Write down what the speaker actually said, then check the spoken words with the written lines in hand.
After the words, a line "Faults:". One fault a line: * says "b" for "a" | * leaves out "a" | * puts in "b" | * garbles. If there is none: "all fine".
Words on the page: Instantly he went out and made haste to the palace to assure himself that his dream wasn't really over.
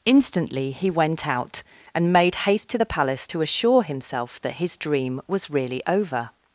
Instantly he went out and made haste to the palace to assure himself that his dream was really over.
Faults:
* says "was" for "wasn't"